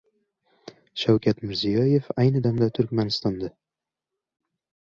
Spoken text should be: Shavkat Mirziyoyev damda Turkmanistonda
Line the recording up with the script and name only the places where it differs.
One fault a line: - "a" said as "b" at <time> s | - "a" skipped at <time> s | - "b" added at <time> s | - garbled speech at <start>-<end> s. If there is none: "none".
- "ayni" added at 2.2 s